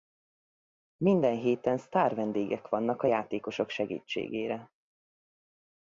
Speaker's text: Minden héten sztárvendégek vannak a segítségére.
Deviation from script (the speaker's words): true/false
true